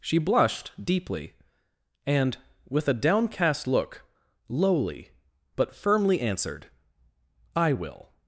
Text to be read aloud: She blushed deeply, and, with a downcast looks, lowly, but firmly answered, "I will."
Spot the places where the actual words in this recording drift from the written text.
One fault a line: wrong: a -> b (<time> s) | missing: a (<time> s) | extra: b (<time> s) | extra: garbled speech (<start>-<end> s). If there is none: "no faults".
wrong: looks -> look (3.7 s)